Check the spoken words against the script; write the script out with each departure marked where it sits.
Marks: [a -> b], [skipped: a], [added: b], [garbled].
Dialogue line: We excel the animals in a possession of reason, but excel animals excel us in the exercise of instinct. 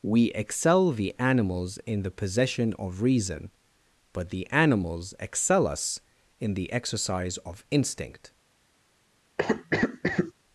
We excel the animals in [a -> the] possession of reason, but [excel -> the] animals excel us in the exercise of instinct.